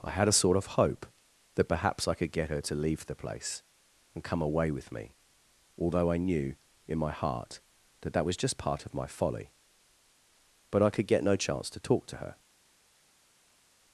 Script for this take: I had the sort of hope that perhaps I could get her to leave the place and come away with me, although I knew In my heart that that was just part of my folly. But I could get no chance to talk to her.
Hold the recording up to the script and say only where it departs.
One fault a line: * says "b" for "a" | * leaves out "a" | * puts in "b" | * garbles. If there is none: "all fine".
* says "a" for "the"